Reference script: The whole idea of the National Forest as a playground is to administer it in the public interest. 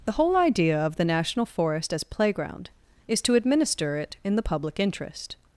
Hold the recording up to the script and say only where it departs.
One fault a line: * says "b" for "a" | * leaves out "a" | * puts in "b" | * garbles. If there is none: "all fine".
* leaves out "a"